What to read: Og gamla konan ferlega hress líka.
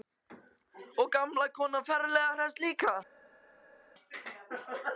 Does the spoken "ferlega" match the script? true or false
true